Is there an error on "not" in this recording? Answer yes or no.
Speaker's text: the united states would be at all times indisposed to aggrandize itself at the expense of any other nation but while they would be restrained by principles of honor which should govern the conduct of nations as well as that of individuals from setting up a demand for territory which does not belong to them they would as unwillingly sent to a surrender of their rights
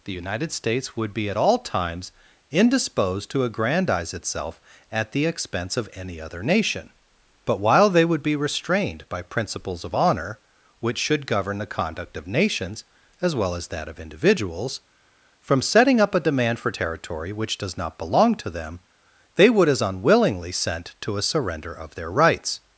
no